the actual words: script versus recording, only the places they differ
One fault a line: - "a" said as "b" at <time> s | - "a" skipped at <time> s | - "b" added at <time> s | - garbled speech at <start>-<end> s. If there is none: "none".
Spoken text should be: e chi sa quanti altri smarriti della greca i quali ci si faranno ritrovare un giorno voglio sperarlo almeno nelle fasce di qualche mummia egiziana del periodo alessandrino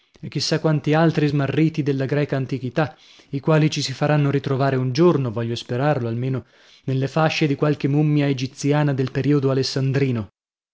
- "antichità" added at 2.4 s